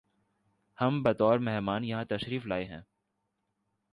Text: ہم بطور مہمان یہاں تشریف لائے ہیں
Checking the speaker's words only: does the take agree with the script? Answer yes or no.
yes